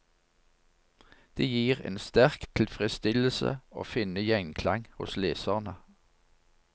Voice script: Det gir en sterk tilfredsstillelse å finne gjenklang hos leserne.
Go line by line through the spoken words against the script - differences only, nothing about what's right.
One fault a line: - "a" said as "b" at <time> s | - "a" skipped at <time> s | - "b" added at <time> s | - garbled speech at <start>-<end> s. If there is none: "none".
none